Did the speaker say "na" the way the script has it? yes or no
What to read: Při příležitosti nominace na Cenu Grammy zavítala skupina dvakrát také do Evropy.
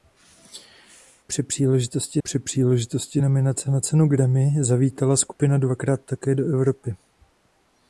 yes